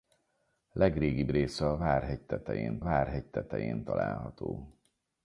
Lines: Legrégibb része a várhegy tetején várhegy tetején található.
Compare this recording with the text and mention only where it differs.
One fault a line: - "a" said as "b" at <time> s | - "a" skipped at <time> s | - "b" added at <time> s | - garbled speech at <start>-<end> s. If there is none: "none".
none